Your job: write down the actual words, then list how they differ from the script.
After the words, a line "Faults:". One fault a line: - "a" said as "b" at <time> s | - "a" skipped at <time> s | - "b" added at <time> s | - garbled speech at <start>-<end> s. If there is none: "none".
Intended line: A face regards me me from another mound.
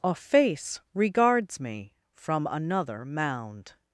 A face regards me from another mound.
Faults:
- "me" skipped at 1.9 s